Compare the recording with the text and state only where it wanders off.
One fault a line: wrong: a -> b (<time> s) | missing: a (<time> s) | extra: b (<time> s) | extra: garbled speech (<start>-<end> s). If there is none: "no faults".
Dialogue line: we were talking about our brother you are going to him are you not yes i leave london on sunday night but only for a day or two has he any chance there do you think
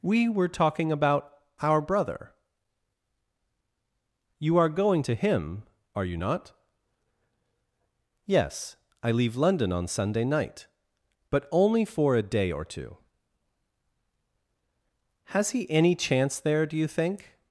no faults